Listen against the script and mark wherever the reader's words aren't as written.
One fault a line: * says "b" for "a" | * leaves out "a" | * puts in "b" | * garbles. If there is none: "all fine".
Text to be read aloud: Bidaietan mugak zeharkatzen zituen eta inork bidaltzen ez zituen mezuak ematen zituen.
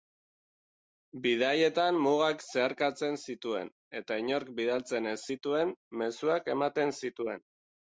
all fine